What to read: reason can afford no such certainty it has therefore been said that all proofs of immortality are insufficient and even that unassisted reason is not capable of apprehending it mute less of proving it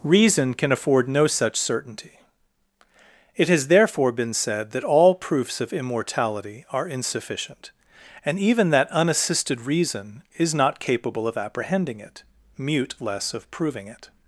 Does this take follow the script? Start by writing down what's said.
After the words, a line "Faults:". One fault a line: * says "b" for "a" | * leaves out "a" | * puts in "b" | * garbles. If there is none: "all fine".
reason can afford no such certainty it has therefore been said that all proofs of immortality are insufficient and even that unassisted reason is not capable of apprehending it mute less of proving it
Faults:
all fine